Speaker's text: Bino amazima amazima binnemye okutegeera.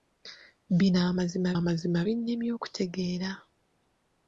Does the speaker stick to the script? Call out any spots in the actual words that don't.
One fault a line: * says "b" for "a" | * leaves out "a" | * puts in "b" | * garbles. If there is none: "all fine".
all fine